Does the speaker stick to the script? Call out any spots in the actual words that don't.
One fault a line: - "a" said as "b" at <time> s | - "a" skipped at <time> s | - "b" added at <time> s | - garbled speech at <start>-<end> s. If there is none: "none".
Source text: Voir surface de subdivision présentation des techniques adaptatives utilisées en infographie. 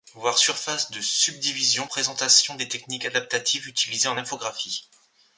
none